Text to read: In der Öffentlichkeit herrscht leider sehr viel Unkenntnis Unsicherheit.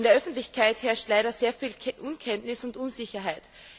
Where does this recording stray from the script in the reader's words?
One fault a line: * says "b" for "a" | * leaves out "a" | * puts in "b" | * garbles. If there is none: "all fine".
* puts in "und"